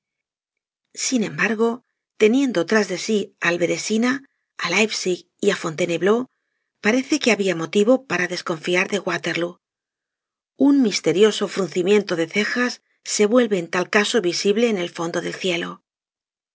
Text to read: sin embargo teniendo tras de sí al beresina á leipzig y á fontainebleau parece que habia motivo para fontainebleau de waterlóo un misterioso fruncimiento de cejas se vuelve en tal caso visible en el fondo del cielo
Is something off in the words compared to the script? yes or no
yes